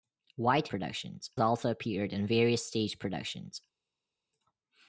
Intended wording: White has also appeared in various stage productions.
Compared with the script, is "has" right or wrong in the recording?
wrong